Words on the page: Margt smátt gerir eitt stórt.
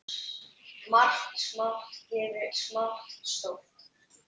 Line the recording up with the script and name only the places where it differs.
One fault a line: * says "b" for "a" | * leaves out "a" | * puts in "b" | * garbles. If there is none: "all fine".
* says "smátt" for "eitt"